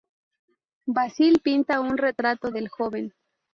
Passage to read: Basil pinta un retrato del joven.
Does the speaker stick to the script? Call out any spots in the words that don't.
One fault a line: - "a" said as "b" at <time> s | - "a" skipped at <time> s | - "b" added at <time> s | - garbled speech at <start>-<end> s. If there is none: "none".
none